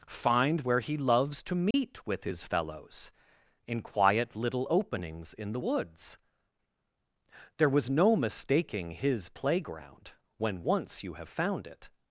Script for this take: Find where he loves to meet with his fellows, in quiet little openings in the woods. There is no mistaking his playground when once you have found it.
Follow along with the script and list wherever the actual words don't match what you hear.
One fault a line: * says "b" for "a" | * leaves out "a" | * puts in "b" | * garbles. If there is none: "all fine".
* says "was" for "is"